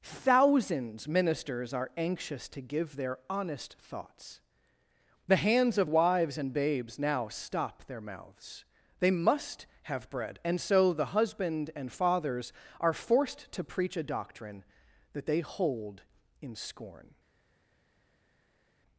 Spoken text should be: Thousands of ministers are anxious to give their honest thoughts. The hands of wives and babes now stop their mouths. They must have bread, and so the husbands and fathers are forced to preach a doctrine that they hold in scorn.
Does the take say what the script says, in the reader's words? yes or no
no